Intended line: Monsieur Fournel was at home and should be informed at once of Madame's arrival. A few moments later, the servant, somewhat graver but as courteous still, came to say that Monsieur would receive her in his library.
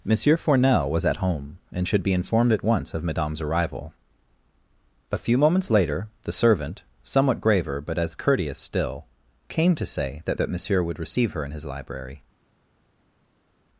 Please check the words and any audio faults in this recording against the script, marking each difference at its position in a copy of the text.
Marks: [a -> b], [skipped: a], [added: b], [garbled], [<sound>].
Monsieur Fournel was at home and should be informed at once of Madame's arrival. A few moments later, the servant, somewhat graver but as courteous still, came to say that [added: that] Monsieur would receive her in his library.